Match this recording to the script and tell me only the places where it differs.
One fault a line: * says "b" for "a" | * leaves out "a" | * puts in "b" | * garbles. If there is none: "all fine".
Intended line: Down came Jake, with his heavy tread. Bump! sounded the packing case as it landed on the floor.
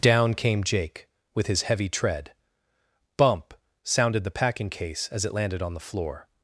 all fine